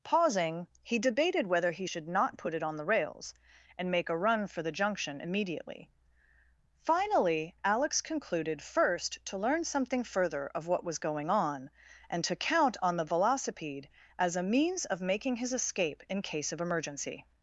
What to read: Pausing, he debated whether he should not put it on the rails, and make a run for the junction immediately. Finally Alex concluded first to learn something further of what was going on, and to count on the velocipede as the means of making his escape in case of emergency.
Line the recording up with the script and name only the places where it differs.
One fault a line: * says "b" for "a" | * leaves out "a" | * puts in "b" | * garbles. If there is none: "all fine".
* says "a" for "the"